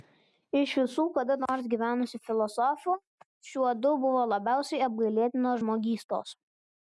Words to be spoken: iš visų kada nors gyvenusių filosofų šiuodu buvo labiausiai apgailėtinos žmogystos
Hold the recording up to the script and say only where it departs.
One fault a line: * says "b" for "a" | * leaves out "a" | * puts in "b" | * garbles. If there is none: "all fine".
all fine